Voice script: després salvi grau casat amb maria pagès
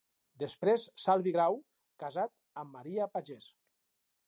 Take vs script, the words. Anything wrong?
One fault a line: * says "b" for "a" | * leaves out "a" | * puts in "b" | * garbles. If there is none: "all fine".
all fine